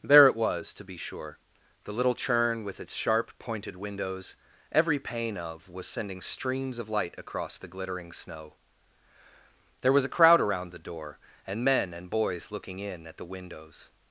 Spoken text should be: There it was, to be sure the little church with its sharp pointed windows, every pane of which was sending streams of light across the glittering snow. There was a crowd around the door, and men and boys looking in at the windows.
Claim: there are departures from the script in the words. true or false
true